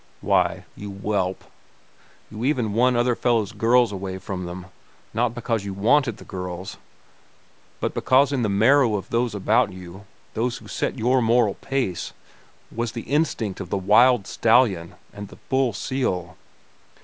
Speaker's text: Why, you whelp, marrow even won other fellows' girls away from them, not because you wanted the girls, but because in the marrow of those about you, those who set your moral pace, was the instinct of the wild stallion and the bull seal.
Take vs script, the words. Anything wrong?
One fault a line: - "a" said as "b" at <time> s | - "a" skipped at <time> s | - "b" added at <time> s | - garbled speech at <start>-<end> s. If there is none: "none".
- "marrow" said as "you" at 2.3 s